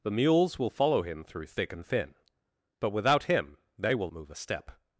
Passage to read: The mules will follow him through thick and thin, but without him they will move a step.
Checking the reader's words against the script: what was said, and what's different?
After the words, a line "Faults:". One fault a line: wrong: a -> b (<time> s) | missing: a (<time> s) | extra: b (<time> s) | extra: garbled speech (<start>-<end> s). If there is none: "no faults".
The mules will follow him through thick and thin, but without him they will move a step.
Faults:
no faults